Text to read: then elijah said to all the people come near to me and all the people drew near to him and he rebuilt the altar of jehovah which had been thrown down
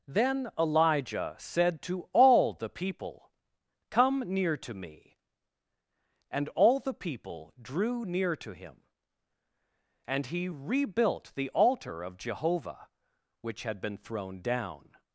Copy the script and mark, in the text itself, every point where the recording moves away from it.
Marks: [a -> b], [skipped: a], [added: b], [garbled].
then elijah said to all the people come near to me and all the people drew near to him and he rebuilt the altar of jehovah which had been thrown down